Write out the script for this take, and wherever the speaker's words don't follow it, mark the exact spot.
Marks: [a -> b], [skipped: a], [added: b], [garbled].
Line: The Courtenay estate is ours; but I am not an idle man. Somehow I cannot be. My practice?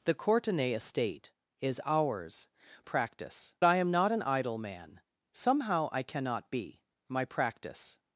The Courtenay estate is ours; [but -> practice] I am not an idle man. Somehow I cannot be. My practice?